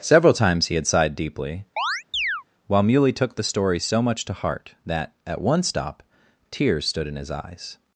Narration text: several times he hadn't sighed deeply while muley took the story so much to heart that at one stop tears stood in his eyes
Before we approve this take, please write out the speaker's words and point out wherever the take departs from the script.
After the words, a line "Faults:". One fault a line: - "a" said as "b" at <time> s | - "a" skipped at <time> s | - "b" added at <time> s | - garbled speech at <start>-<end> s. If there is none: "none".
several times he had sighed deeply while muley took the story so much to heart that at one stop tears stood in his eyes
Faults:
- "hadn't" said as "had" at 0.8 s